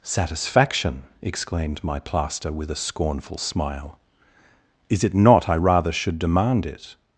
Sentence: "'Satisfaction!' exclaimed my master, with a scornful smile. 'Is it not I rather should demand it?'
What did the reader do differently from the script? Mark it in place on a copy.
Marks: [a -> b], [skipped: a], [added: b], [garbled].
"'Satisfaction!' exclaimed my [master, -> plaster] with a scornful smile. 'Is it not I rather should demand it?'